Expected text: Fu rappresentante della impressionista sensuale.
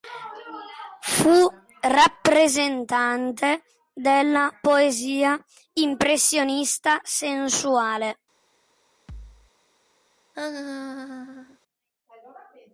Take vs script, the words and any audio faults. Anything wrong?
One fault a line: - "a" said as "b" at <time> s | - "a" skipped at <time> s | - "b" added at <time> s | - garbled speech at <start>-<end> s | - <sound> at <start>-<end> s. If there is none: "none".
- "poesia" added at 4.6 s
- thud at 9.1-9.5 s
- laugh at 10.3-11.6 s